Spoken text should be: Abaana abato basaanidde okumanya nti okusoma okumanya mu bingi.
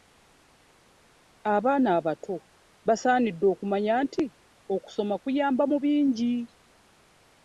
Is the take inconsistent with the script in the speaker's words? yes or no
yes